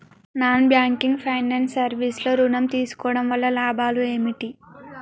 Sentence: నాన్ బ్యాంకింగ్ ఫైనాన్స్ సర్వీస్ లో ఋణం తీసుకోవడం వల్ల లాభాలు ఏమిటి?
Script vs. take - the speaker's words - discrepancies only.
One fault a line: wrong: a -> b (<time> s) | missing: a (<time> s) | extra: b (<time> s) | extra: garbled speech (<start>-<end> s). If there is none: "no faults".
no faults